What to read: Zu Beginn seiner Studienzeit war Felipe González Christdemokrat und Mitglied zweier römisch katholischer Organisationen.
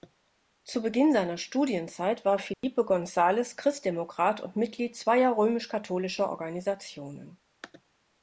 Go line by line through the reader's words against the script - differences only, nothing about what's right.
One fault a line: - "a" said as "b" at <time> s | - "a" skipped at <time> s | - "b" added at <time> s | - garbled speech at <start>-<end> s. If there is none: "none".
none